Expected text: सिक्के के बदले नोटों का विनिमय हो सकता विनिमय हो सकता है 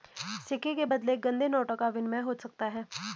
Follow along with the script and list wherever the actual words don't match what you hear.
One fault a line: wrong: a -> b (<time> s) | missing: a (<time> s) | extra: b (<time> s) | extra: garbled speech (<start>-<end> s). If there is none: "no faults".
extra: गंदे (1.3 s)
missing: विनिमय हो सकता (2.7 s)